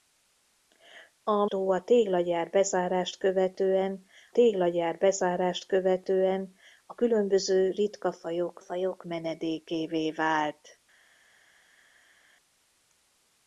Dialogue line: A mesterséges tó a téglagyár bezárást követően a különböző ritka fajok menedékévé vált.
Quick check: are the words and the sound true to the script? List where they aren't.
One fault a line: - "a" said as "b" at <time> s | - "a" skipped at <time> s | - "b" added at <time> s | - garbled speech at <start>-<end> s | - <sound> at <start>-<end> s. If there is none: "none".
- "mesterséges" skipped at 1.4 s
- "téglagyár bezárást követően" added at 4.3 s
- "fajok" added at 8.6 s